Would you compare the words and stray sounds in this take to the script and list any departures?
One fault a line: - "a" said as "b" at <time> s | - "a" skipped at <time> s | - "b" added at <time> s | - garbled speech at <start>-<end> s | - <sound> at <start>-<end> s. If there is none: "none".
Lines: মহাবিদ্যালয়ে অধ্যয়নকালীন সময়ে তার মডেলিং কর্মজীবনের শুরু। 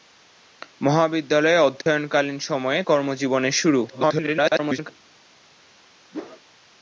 - dropout at 1.8-1.9 s
- "তার মডেলিং" skipped at 2.8 s
- garbled speech at 3.9-4.9 s
- whoosh at 6.1-6.4 s